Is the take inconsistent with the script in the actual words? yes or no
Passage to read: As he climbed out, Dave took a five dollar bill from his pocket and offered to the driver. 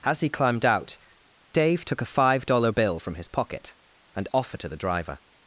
no